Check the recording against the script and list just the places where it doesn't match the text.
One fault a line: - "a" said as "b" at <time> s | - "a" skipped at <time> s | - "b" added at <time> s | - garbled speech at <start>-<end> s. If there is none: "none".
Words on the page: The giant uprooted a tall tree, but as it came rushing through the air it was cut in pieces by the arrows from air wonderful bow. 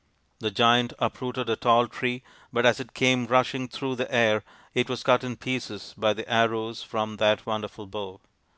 - "air" said as "that" at 7.2 s